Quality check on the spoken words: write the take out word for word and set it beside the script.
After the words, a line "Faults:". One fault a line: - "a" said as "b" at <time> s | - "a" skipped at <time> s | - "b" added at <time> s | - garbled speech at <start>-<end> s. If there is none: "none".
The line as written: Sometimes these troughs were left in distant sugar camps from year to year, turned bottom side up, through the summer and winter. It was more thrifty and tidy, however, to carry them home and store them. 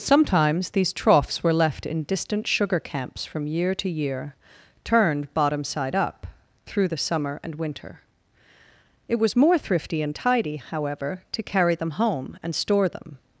Sometimes these troughs were left in distant sugar camps from year to year, turned bottom side up, through the summer and winter. It was more thrifty and tidy, however, to carry them home and store them.
Faults:
none